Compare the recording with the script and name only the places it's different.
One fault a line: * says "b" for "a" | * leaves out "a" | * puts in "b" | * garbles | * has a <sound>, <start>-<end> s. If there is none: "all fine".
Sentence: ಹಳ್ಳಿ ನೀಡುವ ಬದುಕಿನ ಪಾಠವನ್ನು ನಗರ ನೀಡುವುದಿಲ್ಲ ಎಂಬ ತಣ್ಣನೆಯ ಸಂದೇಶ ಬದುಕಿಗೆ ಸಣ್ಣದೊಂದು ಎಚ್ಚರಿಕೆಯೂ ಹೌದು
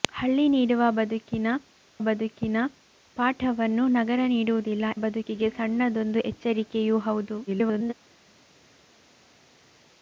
* puts in "ಬದುಕಿನ"
* leaves out "ಎಂಬ ತಣ್ಣನೆಯ ಸಂದೇಶ"
* garbles